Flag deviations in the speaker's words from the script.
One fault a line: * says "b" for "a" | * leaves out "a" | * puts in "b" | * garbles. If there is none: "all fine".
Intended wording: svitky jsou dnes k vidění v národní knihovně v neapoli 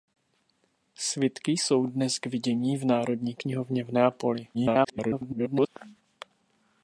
* garbles